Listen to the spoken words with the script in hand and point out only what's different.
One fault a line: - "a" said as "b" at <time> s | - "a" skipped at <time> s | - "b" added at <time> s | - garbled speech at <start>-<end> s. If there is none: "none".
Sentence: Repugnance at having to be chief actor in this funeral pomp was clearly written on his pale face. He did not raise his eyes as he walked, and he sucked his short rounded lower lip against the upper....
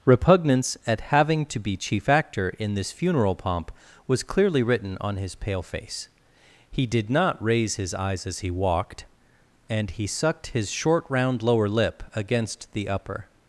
- "rounded" said as "round" at 11.1 s